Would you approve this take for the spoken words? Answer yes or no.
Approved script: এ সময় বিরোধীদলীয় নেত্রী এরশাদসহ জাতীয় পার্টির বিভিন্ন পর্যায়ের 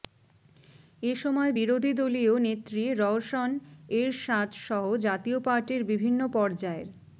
no